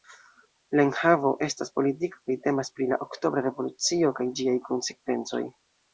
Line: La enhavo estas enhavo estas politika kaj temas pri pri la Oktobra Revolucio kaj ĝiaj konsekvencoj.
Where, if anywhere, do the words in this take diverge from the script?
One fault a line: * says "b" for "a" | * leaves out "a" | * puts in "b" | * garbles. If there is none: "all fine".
* leaves out "enhavo estas"
* leaves out "pri"